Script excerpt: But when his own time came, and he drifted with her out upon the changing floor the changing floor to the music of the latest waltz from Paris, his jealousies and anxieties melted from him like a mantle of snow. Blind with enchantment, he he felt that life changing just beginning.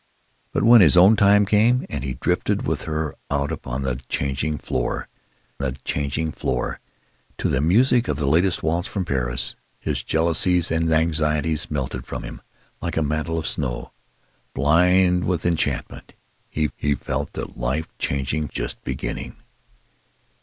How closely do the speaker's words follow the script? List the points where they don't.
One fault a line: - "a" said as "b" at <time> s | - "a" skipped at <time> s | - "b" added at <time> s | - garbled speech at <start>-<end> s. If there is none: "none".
none